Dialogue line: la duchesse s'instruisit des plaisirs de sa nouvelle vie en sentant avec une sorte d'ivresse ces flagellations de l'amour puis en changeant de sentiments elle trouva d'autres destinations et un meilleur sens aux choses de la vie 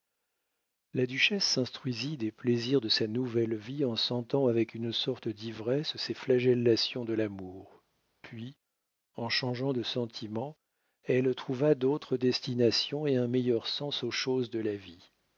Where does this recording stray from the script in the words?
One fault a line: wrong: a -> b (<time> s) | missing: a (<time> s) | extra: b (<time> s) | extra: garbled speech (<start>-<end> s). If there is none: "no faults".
no faults